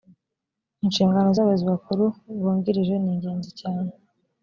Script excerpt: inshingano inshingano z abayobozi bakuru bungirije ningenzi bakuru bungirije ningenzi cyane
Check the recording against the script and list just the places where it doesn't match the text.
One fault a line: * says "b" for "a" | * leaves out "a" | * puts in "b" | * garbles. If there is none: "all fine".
* leaves out "inshingano"
* leaves out "bakuru bungirije ningenzi"